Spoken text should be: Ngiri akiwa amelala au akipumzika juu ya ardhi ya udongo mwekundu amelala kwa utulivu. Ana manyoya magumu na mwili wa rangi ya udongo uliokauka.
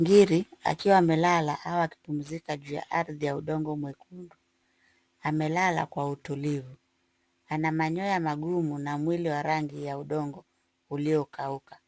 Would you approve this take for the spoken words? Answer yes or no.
yes